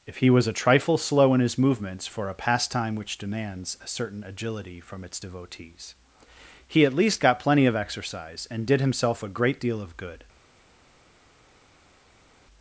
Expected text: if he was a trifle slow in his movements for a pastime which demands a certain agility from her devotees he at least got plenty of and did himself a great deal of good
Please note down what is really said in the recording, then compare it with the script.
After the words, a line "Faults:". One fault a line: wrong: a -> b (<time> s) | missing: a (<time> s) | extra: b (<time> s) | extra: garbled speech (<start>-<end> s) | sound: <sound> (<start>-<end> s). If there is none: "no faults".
if he was a trifle slow in his movements for a pastime which demands a certain agility from its devotees he at least got plenty of exercise and did himself a great deal of good
Faults:
wrong: her -> its (5.0 s)
extra: exercise (7.7 s)